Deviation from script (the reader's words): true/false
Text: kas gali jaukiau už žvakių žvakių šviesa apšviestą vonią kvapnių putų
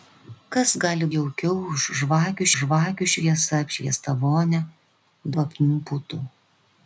false